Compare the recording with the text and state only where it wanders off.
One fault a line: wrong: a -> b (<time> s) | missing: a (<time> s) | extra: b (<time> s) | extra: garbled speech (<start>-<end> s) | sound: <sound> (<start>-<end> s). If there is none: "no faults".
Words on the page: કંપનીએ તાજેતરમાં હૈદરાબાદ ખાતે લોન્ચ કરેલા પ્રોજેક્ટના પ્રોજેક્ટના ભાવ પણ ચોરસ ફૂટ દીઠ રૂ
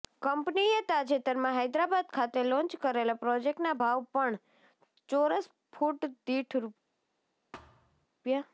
missing: પ્રોજેક્ટના (3.8 s)
sound: thud (7.5-8.1 s)